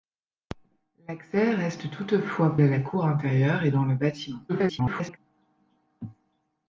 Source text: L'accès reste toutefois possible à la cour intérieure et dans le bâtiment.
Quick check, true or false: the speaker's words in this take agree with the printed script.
false